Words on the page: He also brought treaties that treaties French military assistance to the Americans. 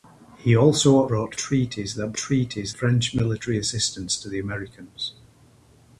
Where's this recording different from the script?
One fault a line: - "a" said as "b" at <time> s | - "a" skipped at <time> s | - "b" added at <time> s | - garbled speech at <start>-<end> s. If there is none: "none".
none